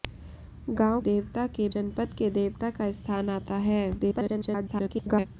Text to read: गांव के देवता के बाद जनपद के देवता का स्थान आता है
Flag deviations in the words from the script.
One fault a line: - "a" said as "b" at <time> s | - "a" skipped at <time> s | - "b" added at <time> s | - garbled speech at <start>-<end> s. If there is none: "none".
- "के" skipped at 1.0 s
- "बाद" skipped at 1.7 s
- garbled speech at 4.0-5.3 s